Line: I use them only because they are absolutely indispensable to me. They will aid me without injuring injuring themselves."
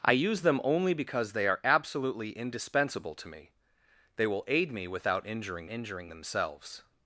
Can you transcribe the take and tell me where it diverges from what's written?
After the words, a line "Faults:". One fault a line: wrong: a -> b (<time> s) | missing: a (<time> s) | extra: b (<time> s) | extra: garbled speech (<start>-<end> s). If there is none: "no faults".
I use them only because they are absolutely indispensable to me. They will aid me without injuring injuring themselves."
Faults:
no faults